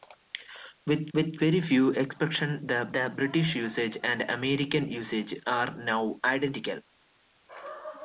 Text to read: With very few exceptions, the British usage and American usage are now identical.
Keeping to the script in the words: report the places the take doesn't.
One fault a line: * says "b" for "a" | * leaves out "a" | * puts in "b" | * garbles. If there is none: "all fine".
* puts in "with"
* puts in "the"